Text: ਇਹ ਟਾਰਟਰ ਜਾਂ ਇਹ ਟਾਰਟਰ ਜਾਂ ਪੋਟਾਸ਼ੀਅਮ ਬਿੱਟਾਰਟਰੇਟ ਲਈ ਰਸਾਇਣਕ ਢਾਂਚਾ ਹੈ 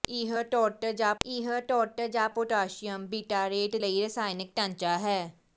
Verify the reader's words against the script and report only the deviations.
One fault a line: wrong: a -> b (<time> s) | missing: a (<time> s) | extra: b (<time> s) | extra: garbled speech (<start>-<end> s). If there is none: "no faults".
no faults